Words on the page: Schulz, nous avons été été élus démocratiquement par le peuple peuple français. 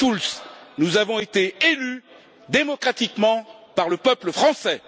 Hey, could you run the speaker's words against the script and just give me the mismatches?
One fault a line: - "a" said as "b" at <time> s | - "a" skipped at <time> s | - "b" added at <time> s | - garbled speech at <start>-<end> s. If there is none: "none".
- "été" skipped at 1.5 s
- "peuple" skipped at 4.3 s